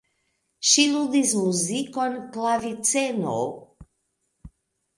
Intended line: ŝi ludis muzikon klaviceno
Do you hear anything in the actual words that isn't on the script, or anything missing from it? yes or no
no